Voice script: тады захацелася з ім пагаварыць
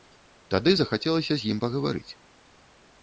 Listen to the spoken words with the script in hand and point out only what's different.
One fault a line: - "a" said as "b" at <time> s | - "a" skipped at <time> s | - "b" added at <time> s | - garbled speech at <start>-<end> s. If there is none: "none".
none